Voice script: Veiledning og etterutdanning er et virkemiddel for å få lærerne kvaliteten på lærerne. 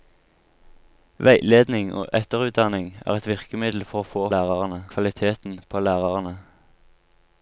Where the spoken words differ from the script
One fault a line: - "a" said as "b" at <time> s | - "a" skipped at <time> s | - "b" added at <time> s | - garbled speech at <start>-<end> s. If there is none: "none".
none